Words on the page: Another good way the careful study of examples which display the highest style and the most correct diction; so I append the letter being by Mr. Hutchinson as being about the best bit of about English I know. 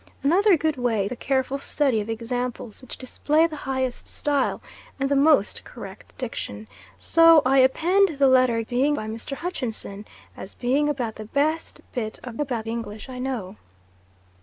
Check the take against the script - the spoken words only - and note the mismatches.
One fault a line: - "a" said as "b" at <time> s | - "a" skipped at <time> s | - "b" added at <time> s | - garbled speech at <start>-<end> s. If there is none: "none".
none